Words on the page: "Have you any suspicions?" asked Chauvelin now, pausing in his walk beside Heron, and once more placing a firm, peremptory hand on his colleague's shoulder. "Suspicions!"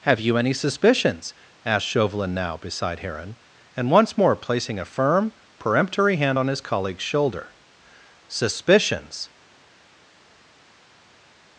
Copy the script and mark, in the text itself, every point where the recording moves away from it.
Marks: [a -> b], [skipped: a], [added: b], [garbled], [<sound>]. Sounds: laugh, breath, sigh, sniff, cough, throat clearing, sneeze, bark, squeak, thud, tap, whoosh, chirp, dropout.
"Have you any suspicions?" asked Chauvelin now, [skipped: pausing in his walk] beside Heron, and once more placing a firm, peremptory hand on his colleague's shoulder. "Suspicions!"